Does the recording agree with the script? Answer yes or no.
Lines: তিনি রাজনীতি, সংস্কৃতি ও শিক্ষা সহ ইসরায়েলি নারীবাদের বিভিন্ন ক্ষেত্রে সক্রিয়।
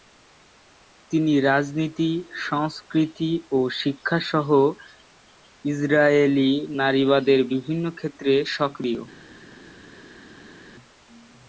yes